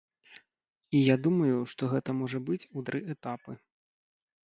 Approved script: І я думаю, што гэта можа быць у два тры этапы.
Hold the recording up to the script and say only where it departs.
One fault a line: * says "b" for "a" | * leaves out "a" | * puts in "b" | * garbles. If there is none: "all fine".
* leaves out "два"